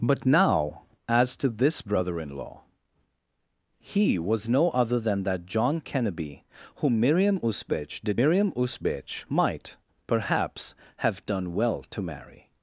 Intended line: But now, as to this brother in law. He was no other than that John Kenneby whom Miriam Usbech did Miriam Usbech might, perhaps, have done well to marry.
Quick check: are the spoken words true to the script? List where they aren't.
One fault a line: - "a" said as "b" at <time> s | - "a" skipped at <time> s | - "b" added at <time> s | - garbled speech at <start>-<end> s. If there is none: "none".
none